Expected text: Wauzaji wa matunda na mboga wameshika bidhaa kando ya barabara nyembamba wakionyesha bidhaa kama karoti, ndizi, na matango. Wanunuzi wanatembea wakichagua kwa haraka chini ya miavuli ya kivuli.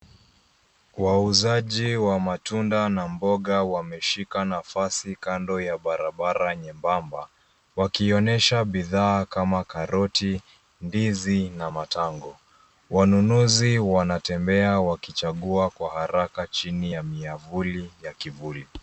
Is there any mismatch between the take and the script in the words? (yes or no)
yes